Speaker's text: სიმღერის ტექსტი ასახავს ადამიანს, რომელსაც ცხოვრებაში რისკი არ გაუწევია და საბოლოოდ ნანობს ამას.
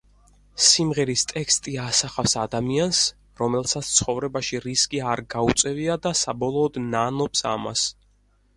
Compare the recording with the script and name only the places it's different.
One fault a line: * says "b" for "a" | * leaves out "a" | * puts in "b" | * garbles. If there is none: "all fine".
all fine